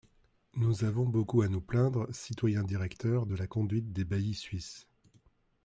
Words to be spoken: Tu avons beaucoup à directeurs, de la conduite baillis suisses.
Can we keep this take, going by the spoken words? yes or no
no